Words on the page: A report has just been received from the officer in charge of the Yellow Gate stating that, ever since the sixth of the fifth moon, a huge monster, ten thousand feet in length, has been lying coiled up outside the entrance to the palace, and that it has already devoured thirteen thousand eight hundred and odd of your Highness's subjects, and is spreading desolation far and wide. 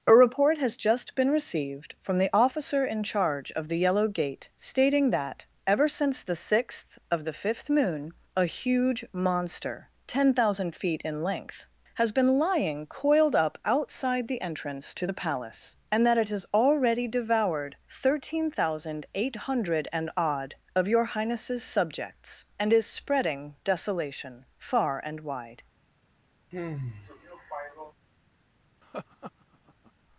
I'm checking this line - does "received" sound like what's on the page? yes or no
yes